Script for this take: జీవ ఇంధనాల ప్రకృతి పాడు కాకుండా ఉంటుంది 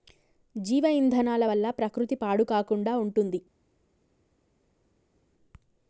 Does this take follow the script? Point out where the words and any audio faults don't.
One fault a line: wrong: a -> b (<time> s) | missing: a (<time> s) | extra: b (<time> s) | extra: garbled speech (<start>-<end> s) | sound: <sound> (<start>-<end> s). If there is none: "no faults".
extra: వల్ల (1.4 s)